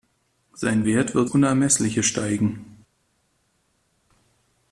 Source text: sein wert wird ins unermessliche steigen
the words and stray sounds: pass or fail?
fail